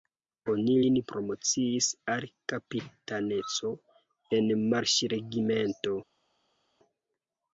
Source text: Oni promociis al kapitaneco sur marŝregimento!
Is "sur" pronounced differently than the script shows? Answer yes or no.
yes